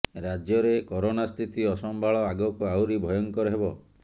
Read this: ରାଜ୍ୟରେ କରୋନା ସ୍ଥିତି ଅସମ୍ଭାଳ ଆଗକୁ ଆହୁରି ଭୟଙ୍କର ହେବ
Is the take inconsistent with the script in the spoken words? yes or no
no